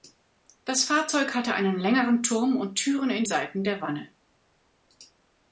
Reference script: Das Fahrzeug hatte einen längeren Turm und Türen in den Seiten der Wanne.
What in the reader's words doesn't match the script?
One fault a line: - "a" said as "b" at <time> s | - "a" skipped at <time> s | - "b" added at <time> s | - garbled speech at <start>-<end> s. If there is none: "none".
- "den" skipped at 3.2 s